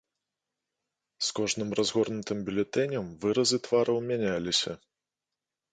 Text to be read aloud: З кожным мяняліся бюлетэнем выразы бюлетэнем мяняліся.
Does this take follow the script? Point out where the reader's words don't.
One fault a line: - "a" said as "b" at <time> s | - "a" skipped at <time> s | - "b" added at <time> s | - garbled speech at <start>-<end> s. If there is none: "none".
- "мяняліся" said as "разгорнутым" at 1.8 s
- "бюлетэнем" said as "твараў" at 3.7 s